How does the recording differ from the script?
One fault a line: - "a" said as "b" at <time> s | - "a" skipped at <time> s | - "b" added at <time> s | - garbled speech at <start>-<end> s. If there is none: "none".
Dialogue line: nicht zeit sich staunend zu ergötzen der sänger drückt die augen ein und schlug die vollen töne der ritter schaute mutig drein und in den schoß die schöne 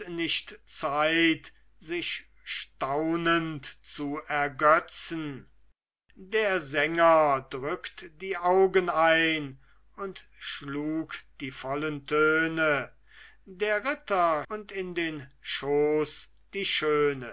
- "schaute mutig drein" skipped at 14.5 s